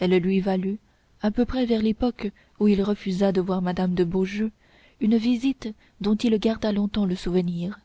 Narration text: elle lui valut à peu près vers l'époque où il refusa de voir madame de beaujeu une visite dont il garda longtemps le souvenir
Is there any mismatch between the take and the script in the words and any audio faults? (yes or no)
no